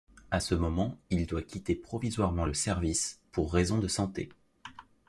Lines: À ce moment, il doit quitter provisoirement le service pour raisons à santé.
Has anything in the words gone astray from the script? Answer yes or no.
yes